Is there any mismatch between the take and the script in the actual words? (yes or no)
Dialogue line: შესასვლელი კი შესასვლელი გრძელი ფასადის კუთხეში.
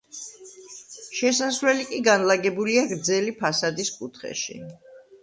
yes